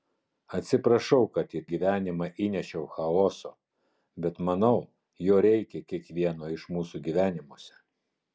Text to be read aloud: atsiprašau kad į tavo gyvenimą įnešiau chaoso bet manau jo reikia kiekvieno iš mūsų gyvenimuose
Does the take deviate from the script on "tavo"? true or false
true